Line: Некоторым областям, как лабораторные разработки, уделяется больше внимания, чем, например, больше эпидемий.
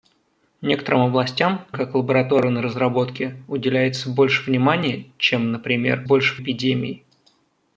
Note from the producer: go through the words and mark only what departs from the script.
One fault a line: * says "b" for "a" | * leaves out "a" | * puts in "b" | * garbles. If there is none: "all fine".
all fine